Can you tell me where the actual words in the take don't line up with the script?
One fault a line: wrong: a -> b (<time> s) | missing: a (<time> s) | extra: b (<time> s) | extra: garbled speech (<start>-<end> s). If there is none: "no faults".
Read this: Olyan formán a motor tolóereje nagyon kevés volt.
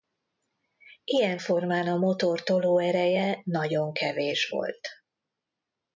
wrong: Olyan -> Ilyen (1.0 s)